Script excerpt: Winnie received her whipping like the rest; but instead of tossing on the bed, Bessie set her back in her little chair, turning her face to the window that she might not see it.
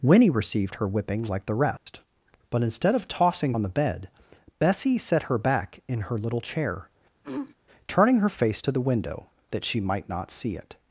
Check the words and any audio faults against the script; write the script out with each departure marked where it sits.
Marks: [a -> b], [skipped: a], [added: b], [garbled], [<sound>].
Winnie received her whipping like the rest; [dropout] but instead of tossing on the bed, Bessie set her back in her little chair, [throat clearing] turning her face to the window that she might not see it.